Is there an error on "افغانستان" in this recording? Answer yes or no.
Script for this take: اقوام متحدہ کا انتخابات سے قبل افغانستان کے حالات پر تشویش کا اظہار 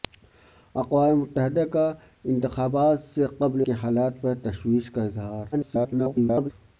yes